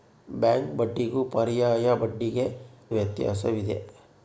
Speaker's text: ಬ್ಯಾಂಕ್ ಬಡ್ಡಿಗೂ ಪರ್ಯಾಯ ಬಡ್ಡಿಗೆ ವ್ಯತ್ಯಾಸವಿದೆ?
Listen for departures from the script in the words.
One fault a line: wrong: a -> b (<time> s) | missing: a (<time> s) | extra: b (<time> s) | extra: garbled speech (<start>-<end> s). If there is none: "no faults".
no faults